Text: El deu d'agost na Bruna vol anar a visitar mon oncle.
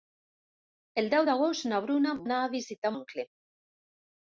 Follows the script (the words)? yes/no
no